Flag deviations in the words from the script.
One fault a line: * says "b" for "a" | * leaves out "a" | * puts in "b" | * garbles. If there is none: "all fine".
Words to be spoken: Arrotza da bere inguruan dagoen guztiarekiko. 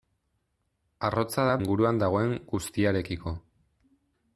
* leaves out "bere"